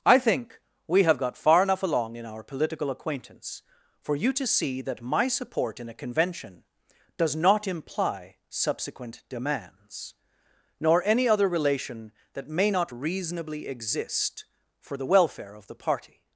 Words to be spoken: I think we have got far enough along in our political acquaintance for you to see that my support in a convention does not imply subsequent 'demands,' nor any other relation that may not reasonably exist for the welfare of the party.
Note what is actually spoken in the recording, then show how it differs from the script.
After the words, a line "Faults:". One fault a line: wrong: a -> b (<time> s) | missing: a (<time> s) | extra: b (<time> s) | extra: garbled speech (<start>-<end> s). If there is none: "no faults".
I think we have got far enough along in our political acquaintance for you to see that my support in a convention does not imply subsequent 'demands,' nor any other relation that may not reasonably exist for the welfare of the party.
Faults:
no faults